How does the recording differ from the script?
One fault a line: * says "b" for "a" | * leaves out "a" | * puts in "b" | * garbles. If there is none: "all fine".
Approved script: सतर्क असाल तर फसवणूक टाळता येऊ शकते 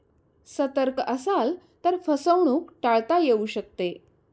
all fine